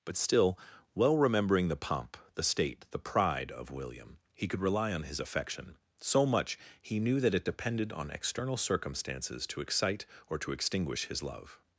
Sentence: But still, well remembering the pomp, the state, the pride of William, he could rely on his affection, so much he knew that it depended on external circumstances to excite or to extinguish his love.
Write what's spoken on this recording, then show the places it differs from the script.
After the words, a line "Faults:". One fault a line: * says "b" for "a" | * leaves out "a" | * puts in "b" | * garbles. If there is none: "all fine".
But still, well remembering the pomp, the state, the pride of William, he could rely on his affection, so much he knew that it depended on external circumstances to excite or to extinguish his love.
Faults:
all fine